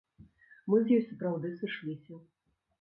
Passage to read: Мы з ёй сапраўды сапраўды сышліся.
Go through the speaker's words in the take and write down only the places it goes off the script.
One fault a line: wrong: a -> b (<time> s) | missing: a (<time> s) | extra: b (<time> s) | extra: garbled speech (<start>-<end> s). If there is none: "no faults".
missing: сапраўды (1.5 s)